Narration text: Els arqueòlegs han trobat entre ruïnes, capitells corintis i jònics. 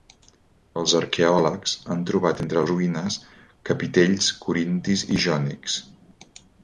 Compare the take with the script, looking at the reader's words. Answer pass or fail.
pass